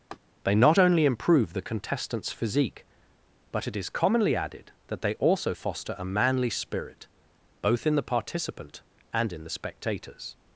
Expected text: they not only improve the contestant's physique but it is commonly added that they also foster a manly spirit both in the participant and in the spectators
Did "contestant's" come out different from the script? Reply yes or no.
no